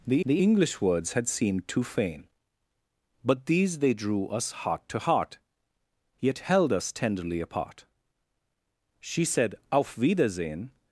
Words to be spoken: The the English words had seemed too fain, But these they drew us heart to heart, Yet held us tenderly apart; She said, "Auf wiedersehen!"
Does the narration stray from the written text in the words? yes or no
no